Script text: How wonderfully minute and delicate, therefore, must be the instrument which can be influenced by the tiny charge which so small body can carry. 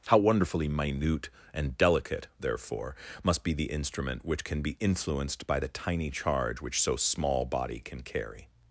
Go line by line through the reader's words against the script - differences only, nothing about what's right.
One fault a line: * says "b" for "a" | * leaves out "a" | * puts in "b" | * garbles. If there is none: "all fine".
all fine